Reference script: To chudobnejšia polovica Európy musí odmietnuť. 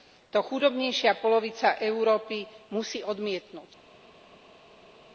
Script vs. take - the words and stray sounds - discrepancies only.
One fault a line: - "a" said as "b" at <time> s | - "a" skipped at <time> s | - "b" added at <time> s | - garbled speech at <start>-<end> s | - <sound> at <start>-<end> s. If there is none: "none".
none